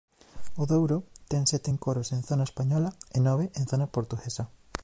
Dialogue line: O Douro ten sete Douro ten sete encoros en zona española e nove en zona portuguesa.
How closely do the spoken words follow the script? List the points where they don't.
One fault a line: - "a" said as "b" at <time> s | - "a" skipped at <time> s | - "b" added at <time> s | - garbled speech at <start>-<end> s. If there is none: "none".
- "Douro ten sete" skipped at 1.7 s